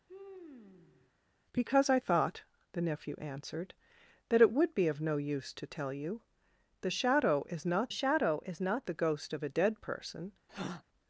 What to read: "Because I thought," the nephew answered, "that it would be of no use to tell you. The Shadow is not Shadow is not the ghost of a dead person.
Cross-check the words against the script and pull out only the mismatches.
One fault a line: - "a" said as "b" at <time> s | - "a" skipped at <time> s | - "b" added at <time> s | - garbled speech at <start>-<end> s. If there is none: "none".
none